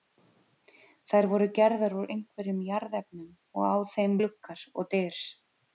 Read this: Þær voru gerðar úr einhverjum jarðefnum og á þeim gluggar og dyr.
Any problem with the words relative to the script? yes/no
no